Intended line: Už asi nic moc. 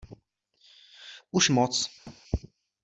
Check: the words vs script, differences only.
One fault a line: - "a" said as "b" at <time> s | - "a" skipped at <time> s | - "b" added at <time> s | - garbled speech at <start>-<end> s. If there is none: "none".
- "asi nic" skipped at 1.5 s